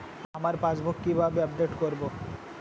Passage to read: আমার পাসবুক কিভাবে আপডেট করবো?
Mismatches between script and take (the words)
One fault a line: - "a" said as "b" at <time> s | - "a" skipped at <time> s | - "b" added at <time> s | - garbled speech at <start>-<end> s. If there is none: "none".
none